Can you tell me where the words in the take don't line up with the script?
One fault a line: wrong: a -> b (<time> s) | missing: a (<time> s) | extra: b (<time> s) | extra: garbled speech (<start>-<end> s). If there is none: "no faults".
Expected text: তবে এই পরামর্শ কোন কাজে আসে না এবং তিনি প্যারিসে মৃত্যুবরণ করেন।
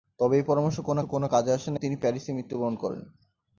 extra: কোন (1.0 s)
missing: এবং (1.8 s)